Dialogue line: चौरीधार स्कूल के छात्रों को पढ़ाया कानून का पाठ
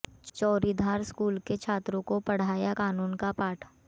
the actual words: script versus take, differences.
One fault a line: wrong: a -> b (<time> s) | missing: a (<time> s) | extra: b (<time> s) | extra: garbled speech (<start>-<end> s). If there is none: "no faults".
no faults